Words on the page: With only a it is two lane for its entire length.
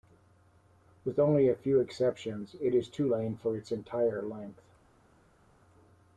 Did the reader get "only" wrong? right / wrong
right